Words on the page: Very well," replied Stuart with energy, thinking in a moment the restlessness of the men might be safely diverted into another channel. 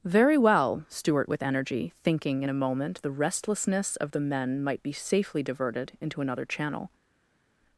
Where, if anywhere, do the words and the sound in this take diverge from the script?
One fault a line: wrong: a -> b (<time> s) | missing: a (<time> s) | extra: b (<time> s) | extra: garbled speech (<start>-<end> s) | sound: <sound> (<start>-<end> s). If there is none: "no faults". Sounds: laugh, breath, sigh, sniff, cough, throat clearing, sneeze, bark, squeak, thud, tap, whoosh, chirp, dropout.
missing: replied (0.8 s)